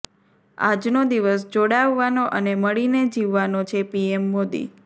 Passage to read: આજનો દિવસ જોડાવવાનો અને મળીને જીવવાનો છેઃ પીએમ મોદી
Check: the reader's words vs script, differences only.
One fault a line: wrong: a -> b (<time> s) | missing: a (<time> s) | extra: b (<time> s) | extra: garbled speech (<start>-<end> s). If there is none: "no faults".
no faults